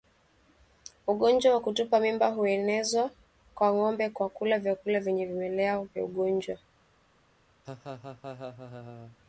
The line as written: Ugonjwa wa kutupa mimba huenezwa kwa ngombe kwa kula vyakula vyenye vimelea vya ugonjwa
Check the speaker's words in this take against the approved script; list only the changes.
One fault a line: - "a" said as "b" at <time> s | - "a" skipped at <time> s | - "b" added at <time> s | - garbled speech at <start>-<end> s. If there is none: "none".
none